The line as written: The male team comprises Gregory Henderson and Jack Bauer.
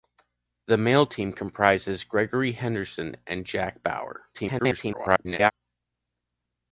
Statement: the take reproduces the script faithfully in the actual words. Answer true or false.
false